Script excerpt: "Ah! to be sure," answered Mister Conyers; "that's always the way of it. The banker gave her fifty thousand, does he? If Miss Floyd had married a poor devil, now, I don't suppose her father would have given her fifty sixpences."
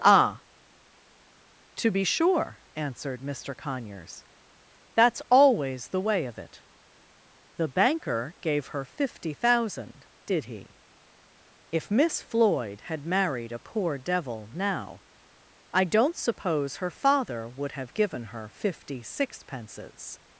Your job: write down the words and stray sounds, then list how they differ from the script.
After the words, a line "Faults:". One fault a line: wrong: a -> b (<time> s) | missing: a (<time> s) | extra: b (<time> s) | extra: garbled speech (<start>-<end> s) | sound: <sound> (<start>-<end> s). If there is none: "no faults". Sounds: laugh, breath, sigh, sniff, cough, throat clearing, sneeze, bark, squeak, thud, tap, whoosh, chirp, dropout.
"Ah! to be sure," answered Mister Conyers; "that's always the way of it. The banker gave her fifty thousand, did he? If Miss Floyd had married a poor devil, now, I don't suppose her father would have given her fifty sixpences."
Faults:
wrong: does -> did (10.3 s)